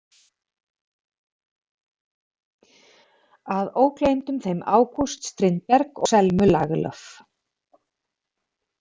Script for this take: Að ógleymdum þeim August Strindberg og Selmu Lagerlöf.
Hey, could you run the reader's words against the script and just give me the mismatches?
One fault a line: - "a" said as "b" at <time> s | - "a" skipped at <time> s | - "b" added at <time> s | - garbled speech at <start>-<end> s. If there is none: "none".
- "og" skipped at 6.0 s